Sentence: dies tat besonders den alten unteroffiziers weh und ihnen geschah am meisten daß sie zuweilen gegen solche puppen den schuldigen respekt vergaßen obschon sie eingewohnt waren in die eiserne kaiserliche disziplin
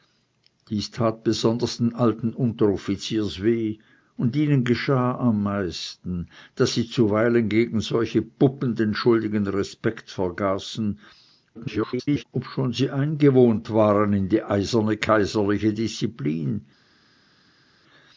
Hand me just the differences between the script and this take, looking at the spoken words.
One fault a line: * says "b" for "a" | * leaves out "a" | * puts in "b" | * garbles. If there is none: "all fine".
* garbles